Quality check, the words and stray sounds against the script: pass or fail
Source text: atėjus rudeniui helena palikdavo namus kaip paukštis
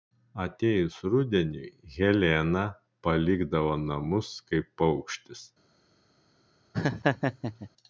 fail